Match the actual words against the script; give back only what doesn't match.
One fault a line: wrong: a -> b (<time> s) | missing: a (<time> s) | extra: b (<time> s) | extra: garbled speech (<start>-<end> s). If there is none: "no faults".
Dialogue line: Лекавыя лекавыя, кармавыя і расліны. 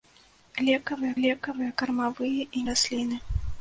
no faults